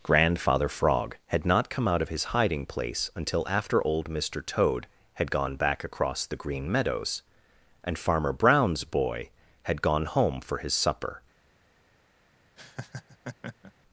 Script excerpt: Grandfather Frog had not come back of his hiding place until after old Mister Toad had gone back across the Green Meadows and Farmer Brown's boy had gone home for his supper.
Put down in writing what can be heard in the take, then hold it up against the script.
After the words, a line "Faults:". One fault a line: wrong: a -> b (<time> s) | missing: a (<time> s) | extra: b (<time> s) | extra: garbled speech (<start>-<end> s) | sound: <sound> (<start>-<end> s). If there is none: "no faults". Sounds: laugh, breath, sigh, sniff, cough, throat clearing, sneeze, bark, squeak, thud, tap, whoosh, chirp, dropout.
Grandfather Frog had not come out of his hiding place until after old Mister Toad had gone back across the Green Meadows and Farmer Brown's boy had gone home for his supper.
Faults:
wrong: back -> out (1.9 s)
sound: laugh (12.6-13.7 s)